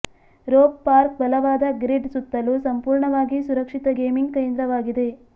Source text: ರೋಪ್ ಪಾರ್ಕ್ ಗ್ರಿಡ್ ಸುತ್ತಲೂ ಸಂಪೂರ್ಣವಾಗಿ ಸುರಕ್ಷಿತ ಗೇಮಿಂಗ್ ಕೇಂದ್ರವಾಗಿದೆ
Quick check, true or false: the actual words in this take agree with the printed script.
false